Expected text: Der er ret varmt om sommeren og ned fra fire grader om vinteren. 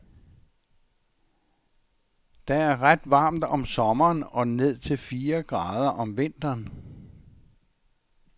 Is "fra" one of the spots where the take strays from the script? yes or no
yes